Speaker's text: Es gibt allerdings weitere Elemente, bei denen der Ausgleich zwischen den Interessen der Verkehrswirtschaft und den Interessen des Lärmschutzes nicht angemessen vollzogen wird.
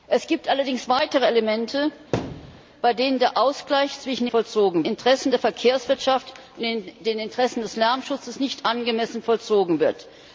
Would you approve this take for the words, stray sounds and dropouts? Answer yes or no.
no